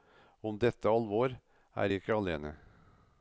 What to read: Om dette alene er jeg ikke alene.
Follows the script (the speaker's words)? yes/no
no